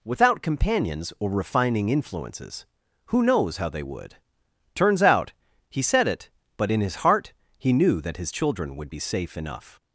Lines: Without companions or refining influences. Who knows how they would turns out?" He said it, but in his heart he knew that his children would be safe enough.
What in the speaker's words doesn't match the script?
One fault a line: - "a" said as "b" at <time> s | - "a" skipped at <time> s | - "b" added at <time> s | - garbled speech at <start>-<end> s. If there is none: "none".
none